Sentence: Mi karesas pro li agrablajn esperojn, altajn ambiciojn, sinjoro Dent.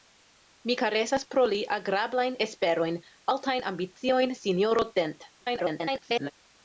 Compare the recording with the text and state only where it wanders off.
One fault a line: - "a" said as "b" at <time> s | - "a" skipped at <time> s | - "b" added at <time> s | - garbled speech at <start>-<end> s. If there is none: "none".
- garbled speech at 5.4-6.3 s